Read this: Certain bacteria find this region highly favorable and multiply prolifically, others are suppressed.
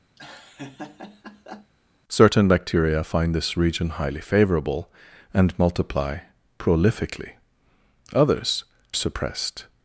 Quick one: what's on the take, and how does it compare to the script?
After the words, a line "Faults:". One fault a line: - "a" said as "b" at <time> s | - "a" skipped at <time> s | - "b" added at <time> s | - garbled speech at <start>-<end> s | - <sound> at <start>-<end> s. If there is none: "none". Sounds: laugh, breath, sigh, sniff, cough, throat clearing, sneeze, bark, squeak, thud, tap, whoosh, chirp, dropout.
Certain bacteria find this region highly favorable and multiply prolifically, others suppressed.
Faults:
- laugh at 0.2-1.7 s
- "are" skipped at 8.6 s